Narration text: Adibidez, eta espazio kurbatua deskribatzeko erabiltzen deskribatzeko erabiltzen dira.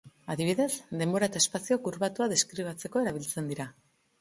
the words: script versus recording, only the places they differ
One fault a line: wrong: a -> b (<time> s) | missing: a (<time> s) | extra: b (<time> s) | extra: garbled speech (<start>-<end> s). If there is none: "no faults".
extra: denbora (1.0 s)
missing: deskribatzeko erabiltzen (3.5 s)